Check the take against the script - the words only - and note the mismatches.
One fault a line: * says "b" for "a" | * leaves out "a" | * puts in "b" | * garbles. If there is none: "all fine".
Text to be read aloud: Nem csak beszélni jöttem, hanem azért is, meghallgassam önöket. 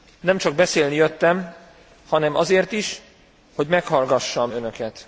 * puts in "hogy"